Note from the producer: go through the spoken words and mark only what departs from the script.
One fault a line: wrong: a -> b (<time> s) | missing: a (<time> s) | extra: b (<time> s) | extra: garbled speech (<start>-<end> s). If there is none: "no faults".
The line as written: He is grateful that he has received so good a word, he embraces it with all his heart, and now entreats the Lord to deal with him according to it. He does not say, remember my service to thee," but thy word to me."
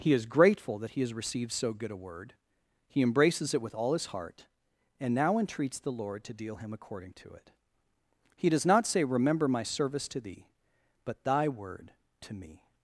missing: with (6.5 s)